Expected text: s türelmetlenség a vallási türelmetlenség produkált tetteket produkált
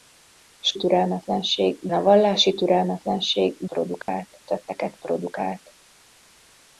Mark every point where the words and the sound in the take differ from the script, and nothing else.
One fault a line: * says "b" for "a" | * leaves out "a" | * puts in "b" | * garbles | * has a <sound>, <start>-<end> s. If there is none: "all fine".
* has a dropout, 4.0-4.1 s